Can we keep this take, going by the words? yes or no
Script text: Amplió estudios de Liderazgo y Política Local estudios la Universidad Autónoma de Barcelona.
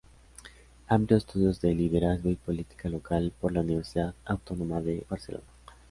no